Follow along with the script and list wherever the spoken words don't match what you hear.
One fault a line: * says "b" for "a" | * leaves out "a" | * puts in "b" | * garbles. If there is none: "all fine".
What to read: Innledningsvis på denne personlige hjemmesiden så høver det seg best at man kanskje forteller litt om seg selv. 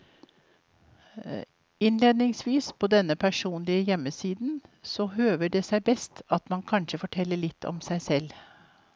all fine